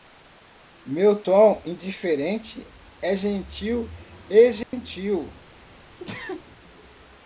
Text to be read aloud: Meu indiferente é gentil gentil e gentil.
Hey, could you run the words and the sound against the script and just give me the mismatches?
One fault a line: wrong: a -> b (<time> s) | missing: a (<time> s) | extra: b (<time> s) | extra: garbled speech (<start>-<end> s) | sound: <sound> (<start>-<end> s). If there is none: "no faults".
extra: tom (1.2 s)
missing: gentil (3.9 s)
sound: dropout (4.6-4.7 s)
sound: sneeze (6.0-6.4 s)